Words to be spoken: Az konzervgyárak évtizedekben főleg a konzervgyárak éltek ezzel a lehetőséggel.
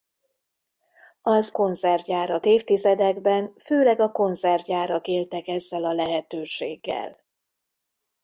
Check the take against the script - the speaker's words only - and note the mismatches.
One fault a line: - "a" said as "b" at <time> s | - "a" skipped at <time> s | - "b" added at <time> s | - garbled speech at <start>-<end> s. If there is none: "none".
none